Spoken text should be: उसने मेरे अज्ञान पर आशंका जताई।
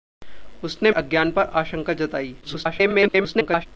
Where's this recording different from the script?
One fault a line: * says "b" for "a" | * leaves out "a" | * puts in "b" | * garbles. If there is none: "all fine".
* leaves out "मेरे"
* garbles